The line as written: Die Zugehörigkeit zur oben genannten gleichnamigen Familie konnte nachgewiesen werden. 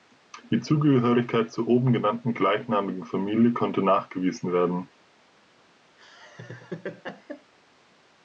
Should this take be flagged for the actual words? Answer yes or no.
no